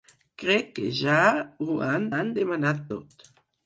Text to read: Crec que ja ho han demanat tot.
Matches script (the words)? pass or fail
fail